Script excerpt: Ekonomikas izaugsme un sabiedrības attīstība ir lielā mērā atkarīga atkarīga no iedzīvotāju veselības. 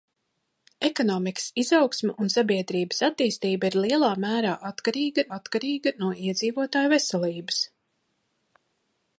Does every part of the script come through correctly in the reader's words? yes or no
yes